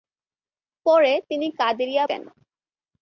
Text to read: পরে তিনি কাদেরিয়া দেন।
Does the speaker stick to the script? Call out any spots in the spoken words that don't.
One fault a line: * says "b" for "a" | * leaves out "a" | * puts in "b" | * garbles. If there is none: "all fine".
all fine